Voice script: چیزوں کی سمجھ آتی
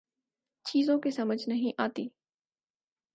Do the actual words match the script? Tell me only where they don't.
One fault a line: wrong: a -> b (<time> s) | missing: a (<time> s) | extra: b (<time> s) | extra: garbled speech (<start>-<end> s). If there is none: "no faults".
extra: نہیں (1.5 s)